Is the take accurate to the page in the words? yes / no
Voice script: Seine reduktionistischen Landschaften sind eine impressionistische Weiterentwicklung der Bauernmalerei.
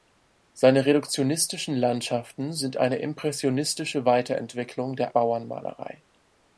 yes